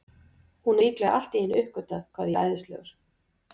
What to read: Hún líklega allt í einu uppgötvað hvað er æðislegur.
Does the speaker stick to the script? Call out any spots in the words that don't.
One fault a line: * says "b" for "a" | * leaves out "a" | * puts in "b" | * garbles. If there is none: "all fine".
all fine